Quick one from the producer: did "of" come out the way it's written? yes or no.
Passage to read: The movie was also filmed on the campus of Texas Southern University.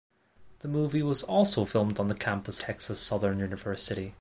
no